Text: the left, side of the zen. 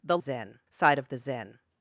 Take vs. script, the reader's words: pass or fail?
fail